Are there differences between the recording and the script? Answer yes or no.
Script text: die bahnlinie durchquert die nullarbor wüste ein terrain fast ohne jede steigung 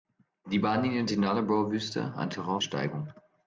yes